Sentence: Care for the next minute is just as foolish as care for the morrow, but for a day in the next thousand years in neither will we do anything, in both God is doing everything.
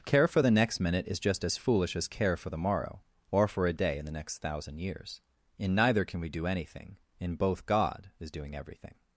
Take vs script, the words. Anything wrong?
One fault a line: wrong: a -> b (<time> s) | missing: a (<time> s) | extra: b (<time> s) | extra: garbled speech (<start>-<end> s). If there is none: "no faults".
wrong: but -> or (3.3 s)
wrong: will -> can (6.1 s)